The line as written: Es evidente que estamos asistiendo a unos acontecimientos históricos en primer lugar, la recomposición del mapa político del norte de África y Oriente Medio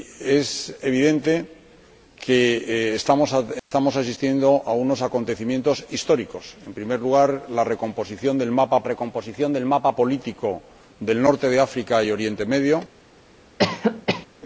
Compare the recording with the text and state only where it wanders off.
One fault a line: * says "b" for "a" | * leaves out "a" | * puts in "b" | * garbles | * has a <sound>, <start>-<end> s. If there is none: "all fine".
* has a dropout, 3.6-3.7 s
* puts in "recomposición del mapa"
* has a cough, 13.6-14.3 s